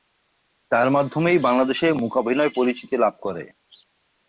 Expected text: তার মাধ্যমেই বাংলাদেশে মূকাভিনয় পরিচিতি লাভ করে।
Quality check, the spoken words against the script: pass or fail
pass